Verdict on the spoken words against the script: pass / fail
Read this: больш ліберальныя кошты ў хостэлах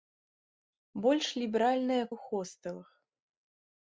fail